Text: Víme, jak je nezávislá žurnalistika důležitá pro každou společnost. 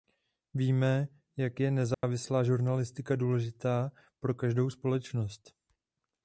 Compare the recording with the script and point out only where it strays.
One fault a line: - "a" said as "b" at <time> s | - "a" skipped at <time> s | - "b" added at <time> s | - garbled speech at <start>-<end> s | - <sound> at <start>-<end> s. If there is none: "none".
- dropout at 1.9-2.0 s